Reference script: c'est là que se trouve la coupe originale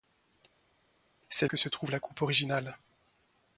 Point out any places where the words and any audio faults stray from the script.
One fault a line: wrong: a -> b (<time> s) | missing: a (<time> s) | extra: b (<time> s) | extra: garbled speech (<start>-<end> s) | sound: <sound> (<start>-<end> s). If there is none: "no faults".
missing: là (1.5 s)